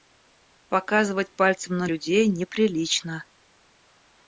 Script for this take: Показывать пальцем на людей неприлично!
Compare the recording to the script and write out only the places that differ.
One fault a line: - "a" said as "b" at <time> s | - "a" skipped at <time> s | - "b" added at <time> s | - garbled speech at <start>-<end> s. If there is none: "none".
none